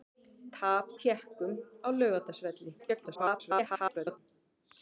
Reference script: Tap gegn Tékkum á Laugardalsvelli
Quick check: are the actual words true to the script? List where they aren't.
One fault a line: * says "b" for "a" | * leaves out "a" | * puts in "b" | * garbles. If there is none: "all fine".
* leaves out "gegn"
* garbles